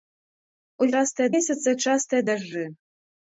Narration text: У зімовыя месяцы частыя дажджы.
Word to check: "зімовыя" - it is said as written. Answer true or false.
false